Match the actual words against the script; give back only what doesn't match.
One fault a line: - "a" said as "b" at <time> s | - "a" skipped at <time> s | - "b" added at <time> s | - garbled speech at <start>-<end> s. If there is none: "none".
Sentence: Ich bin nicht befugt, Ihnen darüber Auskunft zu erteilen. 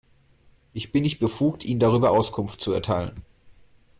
none